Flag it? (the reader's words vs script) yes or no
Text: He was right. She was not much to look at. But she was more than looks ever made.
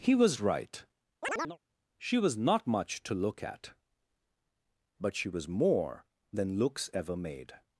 no